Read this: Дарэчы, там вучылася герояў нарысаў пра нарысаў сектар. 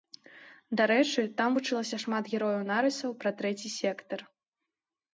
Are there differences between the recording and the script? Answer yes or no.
yes